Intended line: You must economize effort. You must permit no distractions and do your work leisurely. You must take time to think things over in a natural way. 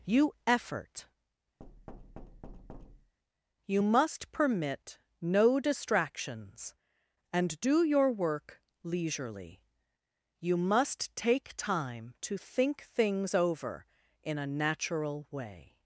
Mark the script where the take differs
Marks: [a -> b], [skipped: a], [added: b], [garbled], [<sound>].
You [skipped: must economize] effort. [thud] You must permit no distractions and do your work leisurely. You must take time to think things over in a natural way.